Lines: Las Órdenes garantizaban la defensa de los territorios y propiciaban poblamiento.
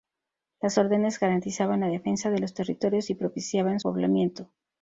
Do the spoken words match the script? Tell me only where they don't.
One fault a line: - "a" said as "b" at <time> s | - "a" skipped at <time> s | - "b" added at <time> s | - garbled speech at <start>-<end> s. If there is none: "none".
none